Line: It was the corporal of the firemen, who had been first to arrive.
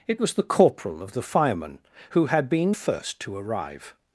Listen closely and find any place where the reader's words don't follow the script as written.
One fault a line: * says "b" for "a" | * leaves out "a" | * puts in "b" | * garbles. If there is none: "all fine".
all fine